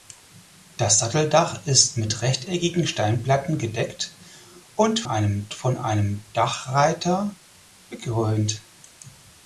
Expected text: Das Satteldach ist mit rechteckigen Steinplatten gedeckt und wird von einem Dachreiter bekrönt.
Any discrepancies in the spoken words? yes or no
yes